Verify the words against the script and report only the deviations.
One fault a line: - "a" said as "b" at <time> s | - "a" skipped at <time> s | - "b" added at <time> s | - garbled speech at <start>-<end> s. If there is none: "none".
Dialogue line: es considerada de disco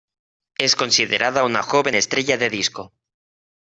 - "una joven estrella" added at 1.4 s